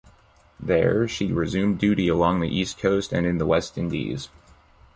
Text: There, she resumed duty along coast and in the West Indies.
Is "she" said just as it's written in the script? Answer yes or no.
yes